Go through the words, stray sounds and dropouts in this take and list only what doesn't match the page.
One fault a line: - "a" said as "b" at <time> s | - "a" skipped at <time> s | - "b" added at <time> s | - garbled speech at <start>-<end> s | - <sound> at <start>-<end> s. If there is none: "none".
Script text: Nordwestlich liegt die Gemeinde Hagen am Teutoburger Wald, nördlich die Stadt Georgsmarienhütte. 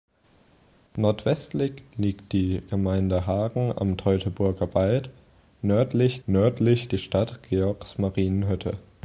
- "nördlich" added at 6.3 s